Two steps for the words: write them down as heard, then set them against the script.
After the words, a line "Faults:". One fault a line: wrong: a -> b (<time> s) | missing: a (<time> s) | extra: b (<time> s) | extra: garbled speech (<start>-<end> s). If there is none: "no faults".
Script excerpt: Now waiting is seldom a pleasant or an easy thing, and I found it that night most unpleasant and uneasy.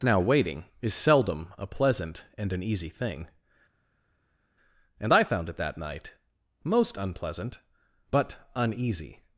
Now waiting is seldom a pleasant and an easy thing, and I found it that night most unpleasant but uneasy.
Faults:
wrong: or -> and (2.4 s)
wrong: and -> but (8.1 s)